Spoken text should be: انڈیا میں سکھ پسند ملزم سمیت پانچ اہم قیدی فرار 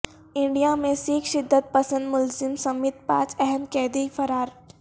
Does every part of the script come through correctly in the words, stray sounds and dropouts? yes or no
no